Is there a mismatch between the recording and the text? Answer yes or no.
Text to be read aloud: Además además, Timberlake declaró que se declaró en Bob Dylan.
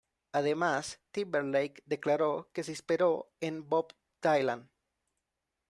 yes